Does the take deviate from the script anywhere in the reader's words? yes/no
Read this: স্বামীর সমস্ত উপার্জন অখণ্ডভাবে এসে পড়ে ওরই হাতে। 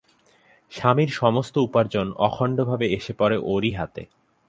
no